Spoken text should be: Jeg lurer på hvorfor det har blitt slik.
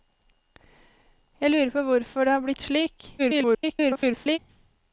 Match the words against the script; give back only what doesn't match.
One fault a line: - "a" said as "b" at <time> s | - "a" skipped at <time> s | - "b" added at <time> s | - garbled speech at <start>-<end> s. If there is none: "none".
- garbled speech at 3.2-4.4 s